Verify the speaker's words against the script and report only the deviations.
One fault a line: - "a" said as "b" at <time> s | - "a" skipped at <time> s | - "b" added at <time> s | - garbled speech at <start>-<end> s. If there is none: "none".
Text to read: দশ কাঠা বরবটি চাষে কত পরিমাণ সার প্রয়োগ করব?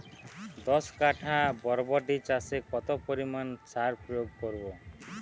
none